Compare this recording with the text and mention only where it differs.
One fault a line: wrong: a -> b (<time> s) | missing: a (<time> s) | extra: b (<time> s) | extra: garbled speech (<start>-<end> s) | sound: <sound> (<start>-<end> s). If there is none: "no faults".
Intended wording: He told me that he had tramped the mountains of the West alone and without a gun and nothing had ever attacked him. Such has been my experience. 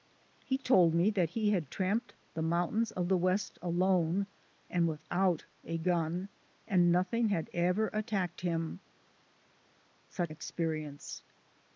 missing: has been my (10.3 s)